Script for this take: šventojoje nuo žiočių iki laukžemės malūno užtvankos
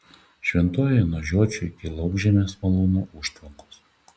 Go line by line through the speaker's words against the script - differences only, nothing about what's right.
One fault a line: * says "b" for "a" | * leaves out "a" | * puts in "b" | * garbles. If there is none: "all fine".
all fine